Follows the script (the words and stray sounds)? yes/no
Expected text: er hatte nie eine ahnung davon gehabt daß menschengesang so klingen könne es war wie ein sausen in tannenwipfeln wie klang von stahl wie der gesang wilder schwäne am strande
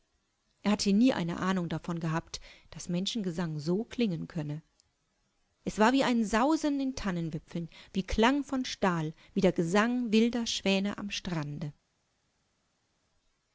yes